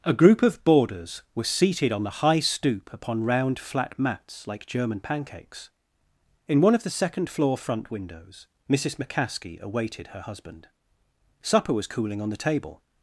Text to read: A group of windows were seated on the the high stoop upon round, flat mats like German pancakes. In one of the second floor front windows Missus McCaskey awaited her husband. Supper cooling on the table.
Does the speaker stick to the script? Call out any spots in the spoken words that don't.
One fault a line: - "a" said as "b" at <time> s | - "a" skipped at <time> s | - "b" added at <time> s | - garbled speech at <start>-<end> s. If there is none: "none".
- "windows" said as "boarders" at 0.6 s
- "the" skipped at 2.2 s
- "was" added at 11.7 s